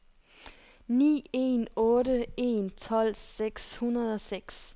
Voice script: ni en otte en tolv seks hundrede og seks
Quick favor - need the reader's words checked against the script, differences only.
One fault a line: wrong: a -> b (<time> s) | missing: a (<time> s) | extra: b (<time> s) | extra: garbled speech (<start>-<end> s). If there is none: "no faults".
no faults